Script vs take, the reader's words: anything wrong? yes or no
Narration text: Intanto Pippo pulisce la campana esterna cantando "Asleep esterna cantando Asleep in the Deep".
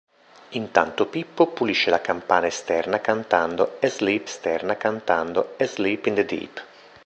no